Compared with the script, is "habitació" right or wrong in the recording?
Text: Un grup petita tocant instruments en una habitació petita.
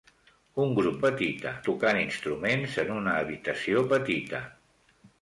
right